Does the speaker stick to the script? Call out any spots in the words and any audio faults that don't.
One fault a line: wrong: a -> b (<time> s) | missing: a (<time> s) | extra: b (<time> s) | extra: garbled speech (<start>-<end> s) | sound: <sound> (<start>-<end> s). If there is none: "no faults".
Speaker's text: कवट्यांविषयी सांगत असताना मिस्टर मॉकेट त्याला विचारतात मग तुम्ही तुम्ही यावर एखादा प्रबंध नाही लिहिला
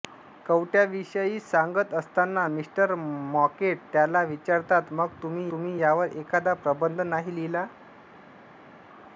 no faults